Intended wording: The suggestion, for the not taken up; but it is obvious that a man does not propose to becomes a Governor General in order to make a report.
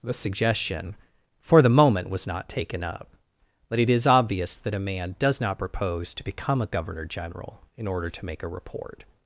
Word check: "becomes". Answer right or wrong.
wrong